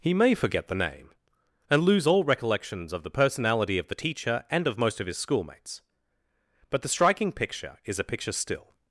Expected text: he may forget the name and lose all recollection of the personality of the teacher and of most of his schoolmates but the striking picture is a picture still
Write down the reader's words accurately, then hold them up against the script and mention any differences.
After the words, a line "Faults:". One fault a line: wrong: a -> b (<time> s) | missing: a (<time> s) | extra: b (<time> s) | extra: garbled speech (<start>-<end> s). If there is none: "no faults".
he may forget the name and lose all recollections of the personality of the teacher and of most of his schoolmates but the striking picture is a picture still
Faults:
wrong: recollection -> recollections (2.2 s)